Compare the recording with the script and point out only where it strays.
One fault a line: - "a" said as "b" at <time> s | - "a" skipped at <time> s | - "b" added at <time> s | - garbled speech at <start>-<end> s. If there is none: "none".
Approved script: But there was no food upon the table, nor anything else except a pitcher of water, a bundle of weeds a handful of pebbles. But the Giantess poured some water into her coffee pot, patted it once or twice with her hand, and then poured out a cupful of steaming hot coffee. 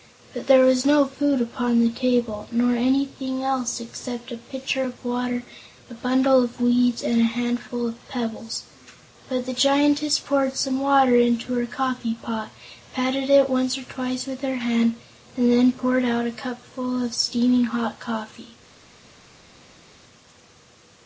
- "and" added at 7.0 s